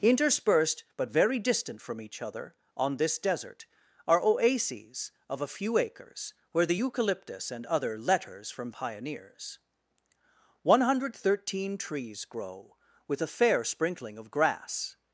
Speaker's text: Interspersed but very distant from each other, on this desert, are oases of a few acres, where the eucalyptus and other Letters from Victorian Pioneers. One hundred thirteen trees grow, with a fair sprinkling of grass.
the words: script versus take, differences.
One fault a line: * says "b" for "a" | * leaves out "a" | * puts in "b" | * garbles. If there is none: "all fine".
* leaves out "Victorian"